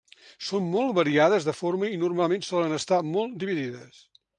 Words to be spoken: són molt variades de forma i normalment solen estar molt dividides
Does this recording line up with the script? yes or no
yes